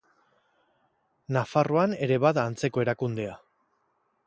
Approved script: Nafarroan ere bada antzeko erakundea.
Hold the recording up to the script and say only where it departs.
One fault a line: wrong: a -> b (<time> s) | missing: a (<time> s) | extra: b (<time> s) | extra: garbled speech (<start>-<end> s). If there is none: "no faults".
no faults